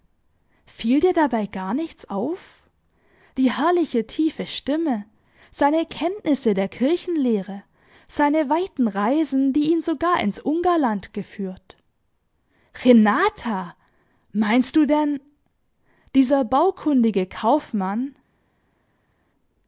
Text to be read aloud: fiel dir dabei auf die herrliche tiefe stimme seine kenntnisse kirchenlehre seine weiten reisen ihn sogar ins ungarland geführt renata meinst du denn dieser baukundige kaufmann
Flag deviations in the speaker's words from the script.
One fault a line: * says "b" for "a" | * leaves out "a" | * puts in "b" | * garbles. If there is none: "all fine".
* puts in "gar nichts"
* puts in "der"
* puts in "die"